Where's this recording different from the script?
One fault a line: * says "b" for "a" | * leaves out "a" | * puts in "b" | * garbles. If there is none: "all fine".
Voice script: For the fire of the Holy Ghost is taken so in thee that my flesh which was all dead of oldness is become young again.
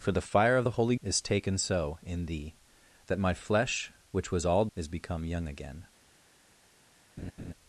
* leaves out "Ghost"
* leaves out "dead of oldness"